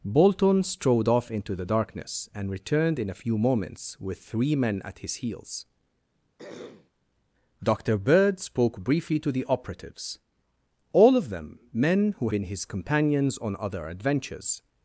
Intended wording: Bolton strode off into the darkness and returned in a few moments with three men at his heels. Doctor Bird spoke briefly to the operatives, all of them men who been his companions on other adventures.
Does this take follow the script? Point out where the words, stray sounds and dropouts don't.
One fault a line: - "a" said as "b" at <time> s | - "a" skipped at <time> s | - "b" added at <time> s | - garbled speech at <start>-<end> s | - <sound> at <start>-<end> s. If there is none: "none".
- throat clearing at 6.4-6.9 s